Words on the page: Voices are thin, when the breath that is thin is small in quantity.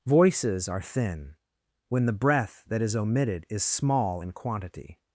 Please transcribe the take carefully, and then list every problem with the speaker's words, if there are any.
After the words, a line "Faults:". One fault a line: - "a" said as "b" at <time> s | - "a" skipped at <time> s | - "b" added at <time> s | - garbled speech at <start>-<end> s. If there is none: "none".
Voices are thin, when the breath that is omitted is small in quantity.
Faults:
- "thin" said as "omitted" at 3.0 s